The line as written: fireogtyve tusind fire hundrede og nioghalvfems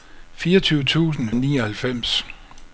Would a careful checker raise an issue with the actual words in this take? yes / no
yes